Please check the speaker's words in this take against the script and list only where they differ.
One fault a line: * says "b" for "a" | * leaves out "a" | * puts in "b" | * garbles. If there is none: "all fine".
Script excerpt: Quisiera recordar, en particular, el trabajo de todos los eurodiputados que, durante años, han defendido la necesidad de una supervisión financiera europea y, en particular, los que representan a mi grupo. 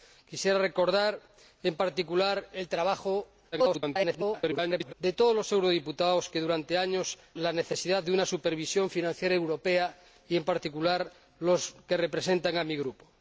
* garbles
* leaves out "han defendido"